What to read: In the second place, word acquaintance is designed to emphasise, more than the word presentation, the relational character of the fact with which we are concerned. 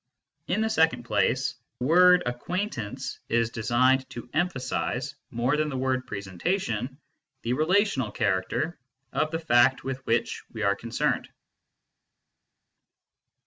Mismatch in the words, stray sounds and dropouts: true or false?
false